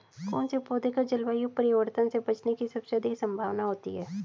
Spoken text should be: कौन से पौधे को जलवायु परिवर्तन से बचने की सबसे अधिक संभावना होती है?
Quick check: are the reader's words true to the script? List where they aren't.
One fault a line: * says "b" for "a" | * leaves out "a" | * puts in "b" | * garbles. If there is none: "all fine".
all fine